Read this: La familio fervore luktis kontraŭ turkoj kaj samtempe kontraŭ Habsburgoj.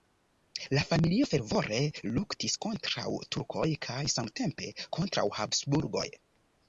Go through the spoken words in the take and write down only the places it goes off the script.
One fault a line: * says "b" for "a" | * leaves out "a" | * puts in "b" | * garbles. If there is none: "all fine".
all fine